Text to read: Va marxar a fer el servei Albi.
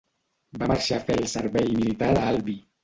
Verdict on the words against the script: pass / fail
fail